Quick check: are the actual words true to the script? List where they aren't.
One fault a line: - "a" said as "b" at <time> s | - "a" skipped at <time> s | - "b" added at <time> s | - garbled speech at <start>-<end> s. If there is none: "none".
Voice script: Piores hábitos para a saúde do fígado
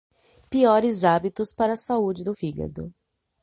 none